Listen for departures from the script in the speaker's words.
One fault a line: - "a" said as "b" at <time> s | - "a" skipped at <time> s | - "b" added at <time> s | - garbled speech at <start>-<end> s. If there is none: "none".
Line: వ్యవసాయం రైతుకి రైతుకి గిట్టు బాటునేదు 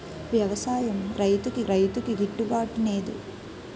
none